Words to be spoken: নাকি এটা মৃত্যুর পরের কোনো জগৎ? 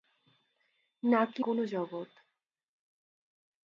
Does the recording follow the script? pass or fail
fail